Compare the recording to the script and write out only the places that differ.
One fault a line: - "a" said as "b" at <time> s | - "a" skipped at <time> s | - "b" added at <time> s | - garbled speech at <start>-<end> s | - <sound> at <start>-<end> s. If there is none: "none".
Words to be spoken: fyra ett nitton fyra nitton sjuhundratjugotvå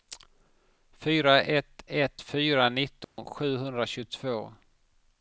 - "nitton" said as "ett" at 1.9 s
- dropout at 3.0-3.2 s